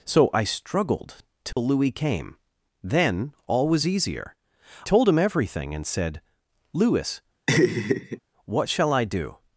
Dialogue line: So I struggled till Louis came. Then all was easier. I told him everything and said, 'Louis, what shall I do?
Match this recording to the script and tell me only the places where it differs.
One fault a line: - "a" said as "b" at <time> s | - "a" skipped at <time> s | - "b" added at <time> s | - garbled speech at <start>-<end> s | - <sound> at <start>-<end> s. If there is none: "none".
- dropout at 1.5-1.6 s
- "I" skipped at 4.3 s
- laugh at 7.5-8.2 s